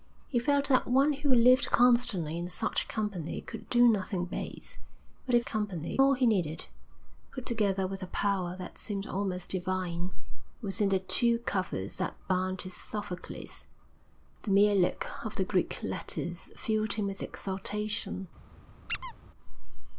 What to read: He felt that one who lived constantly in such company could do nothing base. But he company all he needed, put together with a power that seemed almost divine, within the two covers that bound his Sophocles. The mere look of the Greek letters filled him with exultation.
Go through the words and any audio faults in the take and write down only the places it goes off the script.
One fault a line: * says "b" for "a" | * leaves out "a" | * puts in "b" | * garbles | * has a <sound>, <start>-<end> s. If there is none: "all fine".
* has a squeak, 18.9-19.1 s